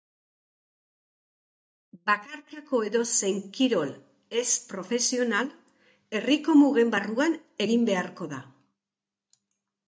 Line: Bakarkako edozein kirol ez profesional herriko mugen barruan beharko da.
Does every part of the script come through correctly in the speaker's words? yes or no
no